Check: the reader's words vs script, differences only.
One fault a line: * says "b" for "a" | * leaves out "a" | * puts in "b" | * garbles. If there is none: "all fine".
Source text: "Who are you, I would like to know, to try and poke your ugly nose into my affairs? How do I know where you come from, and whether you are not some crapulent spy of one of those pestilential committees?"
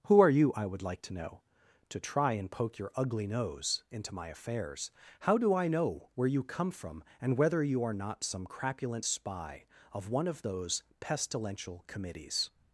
all fine